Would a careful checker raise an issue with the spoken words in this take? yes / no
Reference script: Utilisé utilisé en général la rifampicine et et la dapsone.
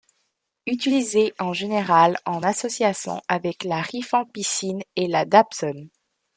yes